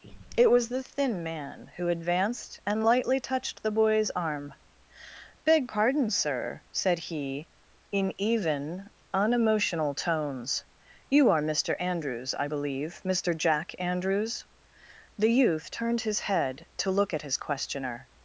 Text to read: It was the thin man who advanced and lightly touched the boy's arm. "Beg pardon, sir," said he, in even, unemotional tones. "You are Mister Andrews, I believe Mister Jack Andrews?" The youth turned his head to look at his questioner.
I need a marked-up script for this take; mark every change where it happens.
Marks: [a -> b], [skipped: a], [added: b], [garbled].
It was the thin man who advanced and lightly touched the boy's arm. "Beg pardon, sir," said he, in even, unemotional tones. "You are Mister Andrews, I believe Mister Jack Andrews?" The youth turned his head to look at his questioner.